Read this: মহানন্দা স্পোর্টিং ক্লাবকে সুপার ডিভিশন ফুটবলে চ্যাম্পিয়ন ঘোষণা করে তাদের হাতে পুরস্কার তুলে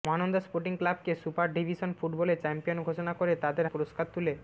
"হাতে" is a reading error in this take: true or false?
true